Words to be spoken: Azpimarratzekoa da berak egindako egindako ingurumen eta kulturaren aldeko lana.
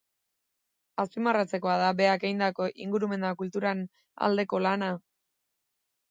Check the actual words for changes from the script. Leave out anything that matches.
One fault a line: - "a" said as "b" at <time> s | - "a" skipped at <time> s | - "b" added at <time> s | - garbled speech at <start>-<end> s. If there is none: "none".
- "egindako" skipped at 2.7 s